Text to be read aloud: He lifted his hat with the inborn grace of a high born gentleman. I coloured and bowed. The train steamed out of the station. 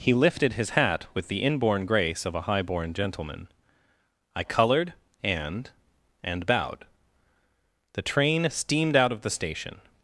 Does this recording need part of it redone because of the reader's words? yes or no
yes